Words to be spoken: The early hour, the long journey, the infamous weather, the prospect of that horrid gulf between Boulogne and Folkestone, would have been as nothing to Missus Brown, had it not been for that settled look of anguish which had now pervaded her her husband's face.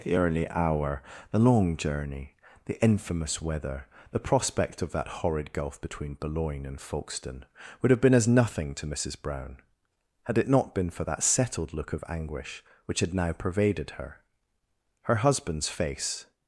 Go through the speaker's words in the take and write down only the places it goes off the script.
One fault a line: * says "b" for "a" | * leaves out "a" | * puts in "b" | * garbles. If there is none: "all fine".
all fine